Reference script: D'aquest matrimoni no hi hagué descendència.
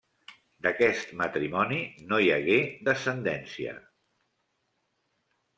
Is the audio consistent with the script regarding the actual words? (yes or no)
yes